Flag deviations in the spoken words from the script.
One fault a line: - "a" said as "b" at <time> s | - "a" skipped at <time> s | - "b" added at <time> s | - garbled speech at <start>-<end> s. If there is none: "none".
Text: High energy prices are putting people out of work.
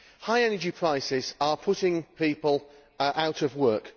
none